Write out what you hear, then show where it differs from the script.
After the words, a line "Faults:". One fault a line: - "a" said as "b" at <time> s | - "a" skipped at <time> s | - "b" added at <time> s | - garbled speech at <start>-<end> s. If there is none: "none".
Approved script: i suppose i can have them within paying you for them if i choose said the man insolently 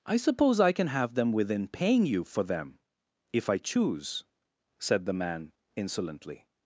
i suppose i can have them within paying you for them if i choose said the man insolently
Faults:
none